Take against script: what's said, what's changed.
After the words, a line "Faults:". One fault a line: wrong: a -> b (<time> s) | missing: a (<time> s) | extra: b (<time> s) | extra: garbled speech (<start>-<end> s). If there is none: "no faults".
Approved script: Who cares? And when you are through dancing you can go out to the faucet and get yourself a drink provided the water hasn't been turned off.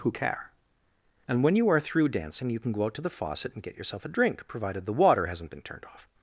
Who care? And when you are through dancing you can go out to the faucet and get yourself a drink provided the water hasn't been turned off.
Faults:
wrong: cares -> care (0.1 s)